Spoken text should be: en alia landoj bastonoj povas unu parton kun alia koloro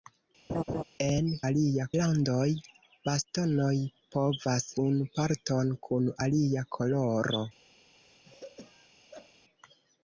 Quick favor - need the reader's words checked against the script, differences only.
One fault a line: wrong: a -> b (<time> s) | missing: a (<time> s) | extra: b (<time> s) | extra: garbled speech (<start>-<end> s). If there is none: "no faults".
no faults